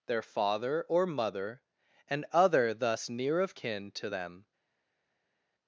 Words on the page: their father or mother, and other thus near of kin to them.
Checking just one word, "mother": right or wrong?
right